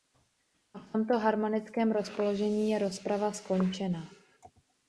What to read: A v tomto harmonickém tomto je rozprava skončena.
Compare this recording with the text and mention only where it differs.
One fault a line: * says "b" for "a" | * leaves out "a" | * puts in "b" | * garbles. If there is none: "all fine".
* says "rozpoložení" for "tomto"